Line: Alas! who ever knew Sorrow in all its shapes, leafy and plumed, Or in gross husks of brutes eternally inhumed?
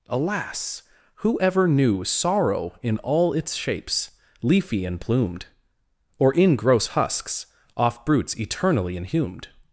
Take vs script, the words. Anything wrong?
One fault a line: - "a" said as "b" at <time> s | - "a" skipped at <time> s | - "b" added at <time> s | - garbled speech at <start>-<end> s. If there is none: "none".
- "of" said as "off" at 7.7 s